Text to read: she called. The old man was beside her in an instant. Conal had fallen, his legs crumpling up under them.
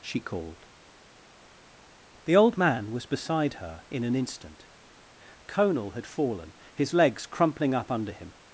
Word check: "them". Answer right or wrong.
wrong